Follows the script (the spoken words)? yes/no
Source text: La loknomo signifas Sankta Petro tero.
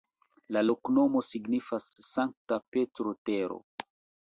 yes